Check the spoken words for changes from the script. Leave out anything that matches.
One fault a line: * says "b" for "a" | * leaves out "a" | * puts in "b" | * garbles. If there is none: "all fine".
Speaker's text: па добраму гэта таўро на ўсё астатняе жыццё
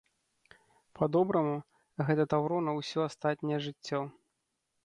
all fine